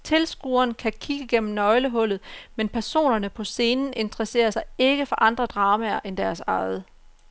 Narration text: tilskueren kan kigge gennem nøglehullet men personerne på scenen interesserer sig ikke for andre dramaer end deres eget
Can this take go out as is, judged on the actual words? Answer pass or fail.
pass